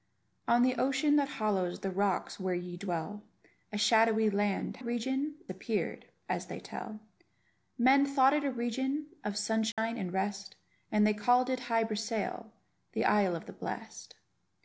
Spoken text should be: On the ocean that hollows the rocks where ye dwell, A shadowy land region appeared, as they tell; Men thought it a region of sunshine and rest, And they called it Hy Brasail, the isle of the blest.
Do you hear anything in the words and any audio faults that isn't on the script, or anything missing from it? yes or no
yes